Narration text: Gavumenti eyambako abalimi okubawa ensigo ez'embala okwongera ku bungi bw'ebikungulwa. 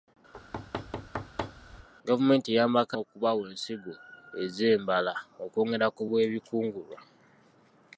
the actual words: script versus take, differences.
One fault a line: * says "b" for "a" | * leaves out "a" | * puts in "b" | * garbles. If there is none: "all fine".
* leaves out "abalimi"
* leaves out "bungi"